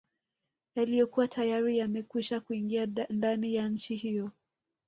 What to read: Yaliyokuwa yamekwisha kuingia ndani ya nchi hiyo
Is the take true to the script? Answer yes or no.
no